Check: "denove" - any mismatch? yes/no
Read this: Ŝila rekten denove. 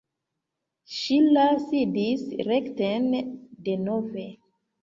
no